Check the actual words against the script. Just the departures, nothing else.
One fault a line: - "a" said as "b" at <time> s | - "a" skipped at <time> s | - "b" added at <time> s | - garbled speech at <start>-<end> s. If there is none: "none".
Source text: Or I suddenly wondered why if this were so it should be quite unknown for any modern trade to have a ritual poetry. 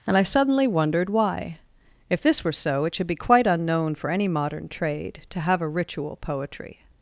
- "Or" said as "And" at 0.1 s